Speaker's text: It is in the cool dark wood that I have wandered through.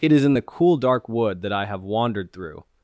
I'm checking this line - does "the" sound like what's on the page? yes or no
yes